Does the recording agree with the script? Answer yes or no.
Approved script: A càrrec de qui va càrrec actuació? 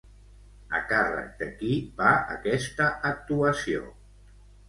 no